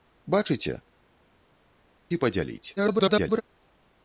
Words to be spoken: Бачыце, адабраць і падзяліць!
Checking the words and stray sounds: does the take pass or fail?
fail